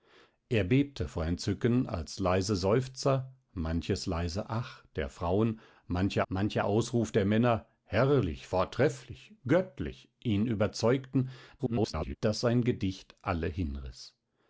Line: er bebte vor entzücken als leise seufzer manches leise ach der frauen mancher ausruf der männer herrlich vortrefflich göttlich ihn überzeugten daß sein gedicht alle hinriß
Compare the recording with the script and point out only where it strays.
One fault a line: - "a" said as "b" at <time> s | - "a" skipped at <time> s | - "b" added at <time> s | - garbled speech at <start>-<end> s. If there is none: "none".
- "mancher" added at 6.3 s
- garbled speech at 11.6-12.2 s